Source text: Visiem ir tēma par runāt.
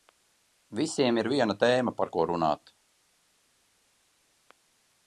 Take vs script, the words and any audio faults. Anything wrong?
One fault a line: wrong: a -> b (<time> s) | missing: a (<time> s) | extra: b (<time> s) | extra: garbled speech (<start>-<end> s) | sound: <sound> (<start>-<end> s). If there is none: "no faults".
extra: viena (1.4 s)
extra: ko (2.1 s)